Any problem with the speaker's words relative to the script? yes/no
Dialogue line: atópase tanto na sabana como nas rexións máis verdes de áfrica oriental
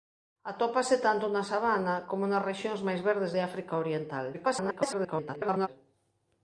yes